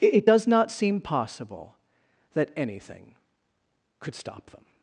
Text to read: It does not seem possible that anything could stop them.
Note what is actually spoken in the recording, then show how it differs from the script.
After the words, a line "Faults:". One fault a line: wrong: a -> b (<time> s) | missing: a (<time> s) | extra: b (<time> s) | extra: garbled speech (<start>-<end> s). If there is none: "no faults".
It does not seem possible that anything could stop them.
Faults:
no faults